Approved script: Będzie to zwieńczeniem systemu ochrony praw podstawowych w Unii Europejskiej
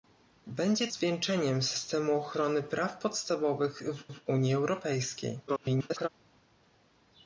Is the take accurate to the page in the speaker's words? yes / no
no